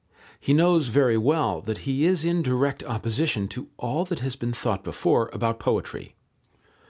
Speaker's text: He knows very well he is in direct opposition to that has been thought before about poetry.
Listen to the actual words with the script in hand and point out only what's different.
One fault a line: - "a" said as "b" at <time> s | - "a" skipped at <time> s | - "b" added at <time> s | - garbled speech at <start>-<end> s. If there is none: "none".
- "that" added at 1.6 s
- "all" added at 3.8 s